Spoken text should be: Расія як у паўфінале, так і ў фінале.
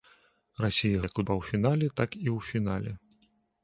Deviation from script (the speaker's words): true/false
false